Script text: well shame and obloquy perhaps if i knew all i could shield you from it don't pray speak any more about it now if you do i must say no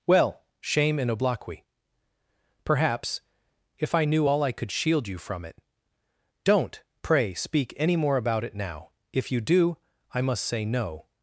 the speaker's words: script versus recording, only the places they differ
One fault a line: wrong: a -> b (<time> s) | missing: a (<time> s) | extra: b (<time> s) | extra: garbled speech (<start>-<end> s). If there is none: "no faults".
no faults